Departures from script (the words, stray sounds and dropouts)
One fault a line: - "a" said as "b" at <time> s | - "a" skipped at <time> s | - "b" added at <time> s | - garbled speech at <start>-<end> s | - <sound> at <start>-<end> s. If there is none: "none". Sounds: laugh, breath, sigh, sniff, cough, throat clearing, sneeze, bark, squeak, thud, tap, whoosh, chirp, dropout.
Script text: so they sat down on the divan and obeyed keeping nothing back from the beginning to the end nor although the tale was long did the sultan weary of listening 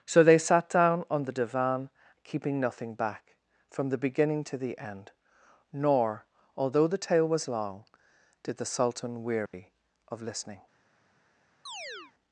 - "and obeyed" skipped at 1.9 s
- dropout at 9.5-9.5 s
- chirp at 11.7-12.1 s